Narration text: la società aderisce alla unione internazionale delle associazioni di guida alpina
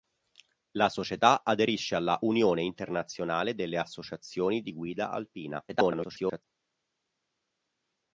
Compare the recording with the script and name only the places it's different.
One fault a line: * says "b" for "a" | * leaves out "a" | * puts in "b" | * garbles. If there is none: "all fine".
* garbles